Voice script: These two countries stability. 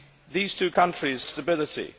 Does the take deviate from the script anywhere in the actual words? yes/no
no